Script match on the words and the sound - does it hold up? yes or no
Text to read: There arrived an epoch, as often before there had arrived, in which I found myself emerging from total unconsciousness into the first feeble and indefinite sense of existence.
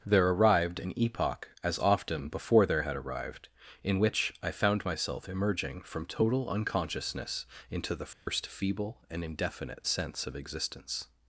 no